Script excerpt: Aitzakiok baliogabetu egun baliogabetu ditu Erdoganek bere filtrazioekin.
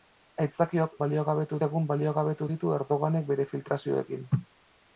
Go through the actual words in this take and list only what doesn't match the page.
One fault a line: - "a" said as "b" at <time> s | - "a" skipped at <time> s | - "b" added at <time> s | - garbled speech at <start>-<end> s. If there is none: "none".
none